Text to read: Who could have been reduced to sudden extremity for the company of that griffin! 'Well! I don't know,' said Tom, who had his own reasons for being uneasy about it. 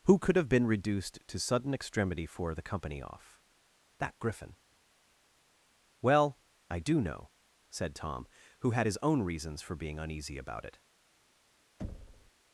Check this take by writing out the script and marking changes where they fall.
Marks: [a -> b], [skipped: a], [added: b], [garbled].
Who could have been reduced to sudden extremity for the company [of -> off] that griffin! 'Well! I [don't -> do] know,' said Tom, who had his own reasons for being uneasy about it.